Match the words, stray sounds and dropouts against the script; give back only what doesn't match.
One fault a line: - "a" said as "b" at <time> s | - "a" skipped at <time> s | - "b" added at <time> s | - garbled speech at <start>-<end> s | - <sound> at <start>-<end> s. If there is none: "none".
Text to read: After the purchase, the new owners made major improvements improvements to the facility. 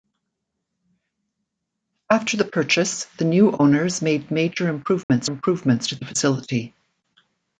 - dropout at 5.0-5.1 s